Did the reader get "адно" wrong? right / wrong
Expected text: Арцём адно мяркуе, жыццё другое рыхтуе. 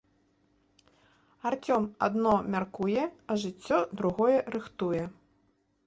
right